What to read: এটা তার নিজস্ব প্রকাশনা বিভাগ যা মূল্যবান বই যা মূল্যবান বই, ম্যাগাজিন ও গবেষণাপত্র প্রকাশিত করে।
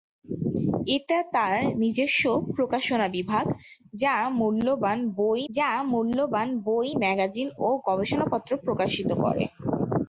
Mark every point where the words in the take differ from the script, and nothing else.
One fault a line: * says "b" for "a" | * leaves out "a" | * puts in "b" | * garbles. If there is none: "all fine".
all fine